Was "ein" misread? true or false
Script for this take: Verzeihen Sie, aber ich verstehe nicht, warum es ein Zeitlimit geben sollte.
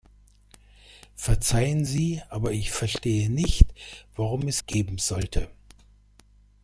true